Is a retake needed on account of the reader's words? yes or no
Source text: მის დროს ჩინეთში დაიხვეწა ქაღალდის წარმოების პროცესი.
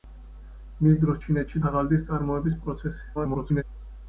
yes